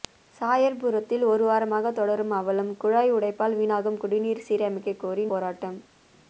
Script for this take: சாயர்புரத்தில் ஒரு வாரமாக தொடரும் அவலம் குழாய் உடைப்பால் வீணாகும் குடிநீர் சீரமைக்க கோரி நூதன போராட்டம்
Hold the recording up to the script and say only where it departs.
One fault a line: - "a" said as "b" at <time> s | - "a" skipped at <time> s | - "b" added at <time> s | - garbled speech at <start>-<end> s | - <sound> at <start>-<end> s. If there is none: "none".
- "நூதன" skipped at 5.2 s